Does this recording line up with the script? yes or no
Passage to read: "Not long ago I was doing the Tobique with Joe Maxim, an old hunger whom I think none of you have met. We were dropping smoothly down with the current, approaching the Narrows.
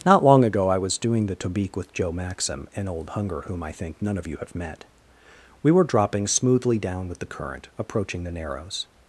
yes